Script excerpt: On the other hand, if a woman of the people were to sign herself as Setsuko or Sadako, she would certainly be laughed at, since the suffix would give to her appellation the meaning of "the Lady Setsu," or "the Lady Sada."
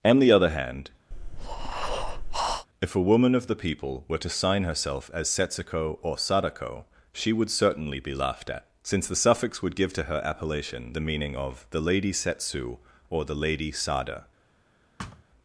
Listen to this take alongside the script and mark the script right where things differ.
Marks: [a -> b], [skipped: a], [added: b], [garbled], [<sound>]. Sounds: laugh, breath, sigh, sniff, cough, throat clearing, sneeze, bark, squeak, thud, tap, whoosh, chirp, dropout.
On the other hand, [breath] if a woman of the people were to sign herself as Setsuko or Sadako, she would certainly be laughed at, since the suffix would give to her appellation the meaning of "the Lady Setsu," or "the Lady Sada." [thud]